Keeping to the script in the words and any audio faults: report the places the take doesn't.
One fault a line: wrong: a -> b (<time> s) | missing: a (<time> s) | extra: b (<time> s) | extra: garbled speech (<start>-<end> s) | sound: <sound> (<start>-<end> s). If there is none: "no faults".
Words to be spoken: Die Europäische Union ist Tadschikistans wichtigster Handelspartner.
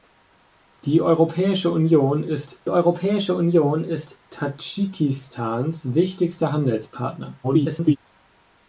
extra: Europäische Union ist (2.7 s)
extra: garbled speech (7.4-8.0 s)